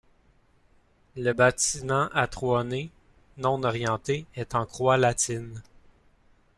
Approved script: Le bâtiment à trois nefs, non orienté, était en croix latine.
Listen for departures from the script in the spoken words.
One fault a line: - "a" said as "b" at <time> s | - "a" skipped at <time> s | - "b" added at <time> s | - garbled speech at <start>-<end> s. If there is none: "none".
- "était" said as "est" at 4.4 s